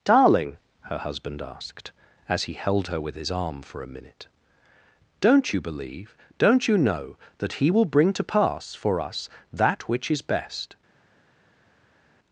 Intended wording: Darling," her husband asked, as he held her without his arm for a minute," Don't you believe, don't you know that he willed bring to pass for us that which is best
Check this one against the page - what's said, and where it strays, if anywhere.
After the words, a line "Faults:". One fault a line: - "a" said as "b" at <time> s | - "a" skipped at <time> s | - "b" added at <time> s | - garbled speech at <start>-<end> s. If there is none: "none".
Darling," her husband asked, as he held her with his arm for a minute," Don't you believe, don't you know that he will bring to pass for us that which is best
Faults:
- "without" said as "with" at 3.0 s
- "willed" said as "will" at 7.7 s